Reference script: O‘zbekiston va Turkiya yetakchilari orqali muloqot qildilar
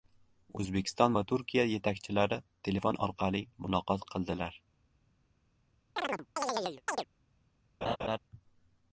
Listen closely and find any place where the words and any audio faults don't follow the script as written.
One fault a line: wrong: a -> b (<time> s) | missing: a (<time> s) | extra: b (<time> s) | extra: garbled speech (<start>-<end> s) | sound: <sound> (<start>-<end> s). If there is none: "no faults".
extra: telefon (2.7 s)
sound: chirp (6.0-7.1 s)
sound: laugh (7.8-8.2 s)